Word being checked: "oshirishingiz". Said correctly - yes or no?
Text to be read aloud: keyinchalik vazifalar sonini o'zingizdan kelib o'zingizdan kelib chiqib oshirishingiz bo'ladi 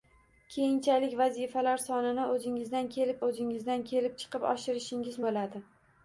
yes